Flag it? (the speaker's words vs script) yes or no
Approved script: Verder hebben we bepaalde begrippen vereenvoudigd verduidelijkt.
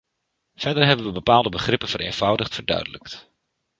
no